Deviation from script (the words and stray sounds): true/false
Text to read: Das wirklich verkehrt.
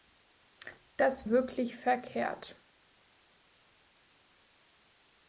false